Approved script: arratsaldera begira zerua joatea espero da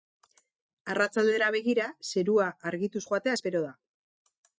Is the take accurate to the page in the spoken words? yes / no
no